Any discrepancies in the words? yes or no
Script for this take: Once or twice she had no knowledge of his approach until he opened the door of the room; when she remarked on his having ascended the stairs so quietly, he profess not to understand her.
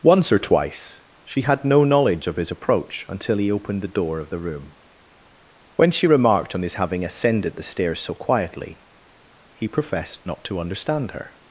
yes